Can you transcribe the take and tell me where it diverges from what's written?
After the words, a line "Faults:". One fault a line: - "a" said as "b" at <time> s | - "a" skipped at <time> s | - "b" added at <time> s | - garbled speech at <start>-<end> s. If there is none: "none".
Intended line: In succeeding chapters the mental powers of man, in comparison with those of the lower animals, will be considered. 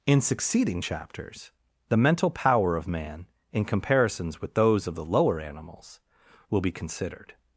In succeeding chapters the mental power of man, in comparisons with those of the lower animals, will be considered.
Faults:
- "powers" said as "power" at 2.3 s
- "comparison" said as "comparisons" at 3.6 s